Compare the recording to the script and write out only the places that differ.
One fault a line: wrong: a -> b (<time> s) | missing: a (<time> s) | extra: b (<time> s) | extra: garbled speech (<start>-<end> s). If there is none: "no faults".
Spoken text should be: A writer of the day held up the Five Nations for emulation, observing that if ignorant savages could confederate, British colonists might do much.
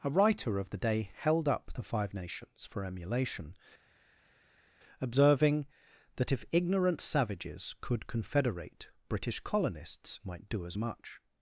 extra: as (10.6 s)